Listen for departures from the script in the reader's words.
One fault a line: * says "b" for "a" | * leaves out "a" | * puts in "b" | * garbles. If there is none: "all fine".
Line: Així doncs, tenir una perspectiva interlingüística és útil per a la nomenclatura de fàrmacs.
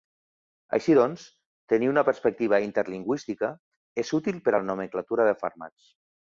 all fine